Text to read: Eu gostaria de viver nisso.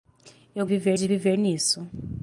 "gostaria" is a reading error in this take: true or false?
true